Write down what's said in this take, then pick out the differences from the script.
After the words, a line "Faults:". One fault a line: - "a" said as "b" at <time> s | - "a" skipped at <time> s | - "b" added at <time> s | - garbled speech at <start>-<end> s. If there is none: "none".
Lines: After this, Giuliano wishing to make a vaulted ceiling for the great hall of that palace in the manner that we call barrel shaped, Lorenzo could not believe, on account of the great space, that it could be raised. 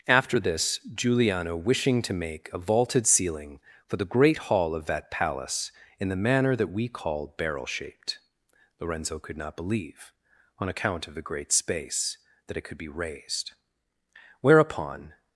After this, Giuliano wishing to make a vaulted ceiling for the great hall of that palace in the manner that we call barrel shaped, Lorenzo could not believe, on account of the great space, that it could be raised. Whereupon
Faults:
- "Whereupon" added at 14.4 s